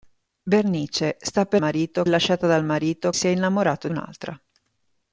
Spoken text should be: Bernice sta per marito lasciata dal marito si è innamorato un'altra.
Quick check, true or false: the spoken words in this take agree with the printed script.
true